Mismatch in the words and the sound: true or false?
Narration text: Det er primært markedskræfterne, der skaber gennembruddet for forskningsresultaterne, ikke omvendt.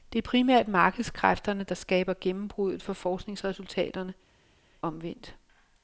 true